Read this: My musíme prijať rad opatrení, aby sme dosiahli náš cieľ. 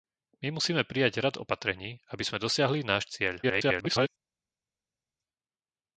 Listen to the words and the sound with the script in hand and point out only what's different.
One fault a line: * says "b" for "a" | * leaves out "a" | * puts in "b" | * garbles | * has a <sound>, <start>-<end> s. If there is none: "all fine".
* garbles